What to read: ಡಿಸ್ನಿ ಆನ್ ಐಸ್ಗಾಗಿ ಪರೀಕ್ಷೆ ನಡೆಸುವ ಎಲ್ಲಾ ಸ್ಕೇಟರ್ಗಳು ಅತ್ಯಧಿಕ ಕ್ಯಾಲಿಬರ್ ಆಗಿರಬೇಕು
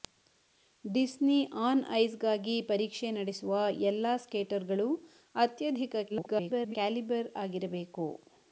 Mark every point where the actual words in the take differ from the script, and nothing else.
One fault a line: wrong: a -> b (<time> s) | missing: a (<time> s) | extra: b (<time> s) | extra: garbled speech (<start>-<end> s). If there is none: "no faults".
extra: garbled speech (6.1-6.8 s)